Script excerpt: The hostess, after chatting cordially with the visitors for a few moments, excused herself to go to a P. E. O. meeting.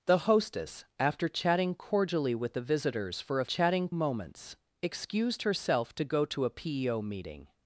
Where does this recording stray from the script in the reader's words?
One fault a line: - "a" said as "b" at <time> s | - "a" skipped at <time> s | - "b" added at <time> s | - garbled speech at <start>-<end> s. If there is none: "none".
- "few" said as "chatting" at 3.4 s